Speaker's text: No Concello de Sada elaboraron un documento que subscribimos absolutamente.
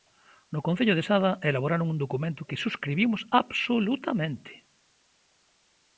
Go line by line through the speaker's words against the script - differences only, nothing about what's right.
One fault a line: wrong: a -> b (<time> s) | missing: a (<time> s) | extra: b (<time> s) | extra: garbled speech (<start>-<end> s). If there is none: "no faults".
no faults